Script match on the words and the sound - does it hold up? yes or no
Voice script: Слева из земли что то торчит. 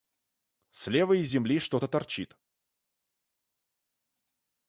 yes